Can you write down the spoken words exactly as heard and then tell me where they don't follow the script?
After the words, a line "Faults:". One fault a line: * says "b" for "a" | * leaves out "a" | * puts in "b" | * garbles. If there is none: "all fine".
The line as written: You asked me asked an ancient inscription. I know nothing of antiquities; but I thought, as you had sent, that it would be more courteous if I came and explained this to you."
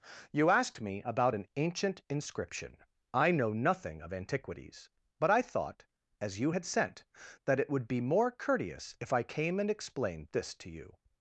You asked me about an ancient inscription. I know nothing of antiquities; but I thought, as you had sent, that it would be more courteous if I came and explained this to you."
Faults:
* says "about" for "asked"